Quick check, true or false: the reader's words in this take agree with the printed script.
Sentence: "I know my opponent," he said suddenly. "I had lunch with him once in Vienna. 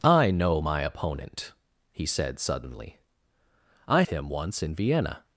false